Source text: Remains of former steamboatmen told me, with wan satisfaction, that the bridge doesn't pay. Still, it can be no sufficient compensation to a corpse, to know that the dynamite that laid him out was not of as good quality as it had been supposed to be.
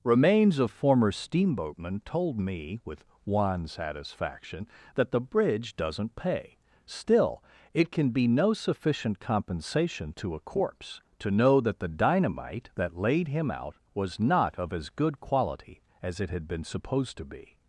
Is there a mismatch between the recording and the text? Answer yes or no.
no